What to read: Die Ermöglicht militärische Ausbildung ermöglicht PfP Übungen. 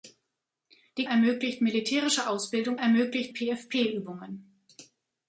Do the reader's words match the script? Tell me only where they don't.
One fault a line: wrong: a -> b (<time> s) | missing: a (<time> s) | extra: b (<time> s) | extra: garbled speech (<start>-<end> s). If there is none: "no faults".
no faults